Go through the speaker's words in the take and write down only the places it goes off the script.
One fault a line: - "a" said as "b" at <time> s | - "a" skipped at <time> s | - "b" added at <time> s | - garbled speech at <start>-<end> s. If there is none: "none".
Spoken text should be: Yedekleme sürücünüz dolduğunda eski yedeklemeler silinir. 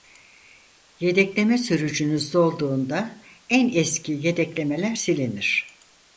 - "en" added at 3.5 s